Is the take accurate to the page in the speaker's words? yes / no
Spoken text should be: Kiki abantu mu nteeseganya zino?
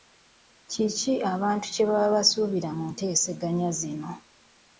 no